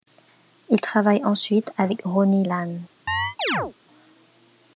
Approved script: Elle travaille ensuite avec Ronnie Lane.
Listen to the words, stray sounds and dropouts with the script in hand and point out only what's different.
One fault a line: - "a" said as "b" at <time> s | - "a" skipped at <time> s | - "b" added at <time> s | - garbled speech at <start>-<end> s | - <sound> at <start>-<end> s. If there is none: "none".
- "Elle" said as "Il" at 0.7 s
- chirp at 3.1-3.7 s